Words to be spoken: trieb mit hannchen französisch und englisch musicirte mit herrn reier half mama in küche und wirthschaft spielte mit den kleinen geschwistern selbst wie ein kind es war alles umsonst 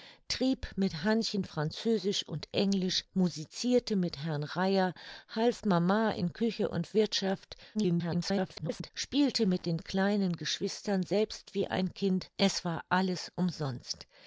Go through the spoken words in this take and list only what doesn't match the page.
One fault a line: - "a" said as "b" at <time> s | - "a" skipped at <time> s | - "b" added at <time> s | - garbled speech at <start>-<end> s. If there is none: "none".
- garbled speech at 7.7-8.9 s